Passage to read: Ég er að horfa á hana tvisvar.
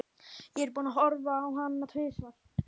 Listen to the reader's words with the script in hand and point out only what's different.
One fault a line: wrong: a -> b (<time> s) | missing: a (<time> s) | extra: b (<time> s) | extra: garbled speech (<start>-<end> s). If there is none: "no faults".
extra: búinn (0.8 s)